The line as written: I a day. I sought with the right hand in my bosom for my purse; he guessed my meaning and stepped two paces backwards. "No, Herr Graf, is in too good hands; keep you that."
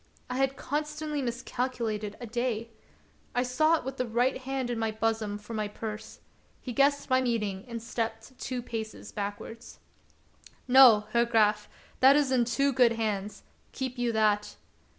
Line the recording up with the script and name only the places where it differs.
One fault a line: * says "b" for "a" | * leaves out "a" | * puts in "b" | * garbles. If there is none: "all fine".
* puts in "had constantly miscalculated"
* puts in "that"